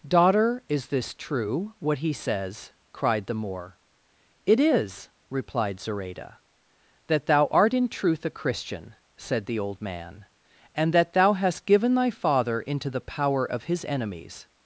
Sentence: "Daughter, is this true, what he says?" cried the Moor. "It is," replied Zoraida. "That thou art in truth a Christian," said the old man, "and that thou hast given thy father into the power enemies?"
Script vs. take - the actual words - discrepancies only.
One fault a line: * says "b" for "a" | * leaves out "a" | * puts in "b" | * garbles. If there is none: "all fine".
* puts in "of his"